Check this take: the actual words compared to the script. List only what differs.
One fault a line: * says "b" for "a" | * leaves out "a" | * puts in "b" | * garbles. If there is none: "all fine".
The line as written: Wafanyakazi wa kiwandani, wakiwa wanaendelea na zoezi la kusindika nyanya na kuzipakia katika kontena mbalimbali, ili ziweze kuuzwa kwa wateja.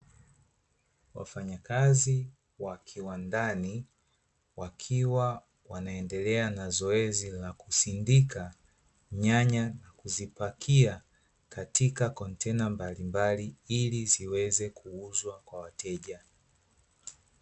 all fine